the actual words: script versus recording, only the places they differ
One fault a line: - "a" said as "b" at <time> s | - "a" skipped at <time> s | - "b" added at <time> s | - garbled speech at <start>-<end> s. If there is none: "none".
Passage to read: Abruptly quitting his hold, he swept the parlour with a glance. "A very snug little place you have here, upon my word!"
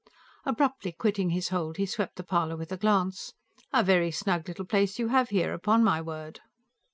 none